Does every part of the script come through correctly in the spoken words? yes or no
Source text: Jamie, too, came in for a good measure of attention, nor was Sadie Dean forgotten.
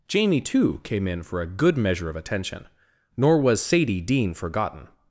yes